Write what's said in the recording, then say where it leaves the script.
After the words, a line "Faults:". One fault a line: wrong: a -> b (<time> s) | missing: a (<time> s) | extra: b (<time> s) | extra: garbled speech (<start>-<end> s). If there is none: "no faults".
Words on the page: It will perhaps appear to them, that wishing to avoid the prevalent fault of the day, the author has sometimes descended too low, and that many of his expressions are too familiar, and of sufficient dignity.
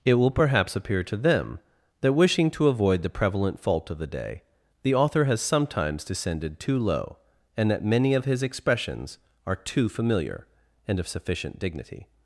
It will perhaps appear to them, that wishing to avoid the prevalent fault of the day, the author has sometimes descended too low, and that many of his expressions are too familiar, and of sufficient dignity.
Faults:
no faults